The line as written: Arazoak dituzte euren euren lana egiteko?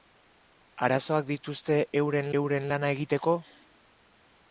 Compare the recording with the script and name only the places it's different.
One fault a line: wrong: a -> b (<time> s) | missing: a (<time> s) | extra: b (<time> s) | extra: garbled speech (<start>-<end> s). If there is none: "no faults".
no faults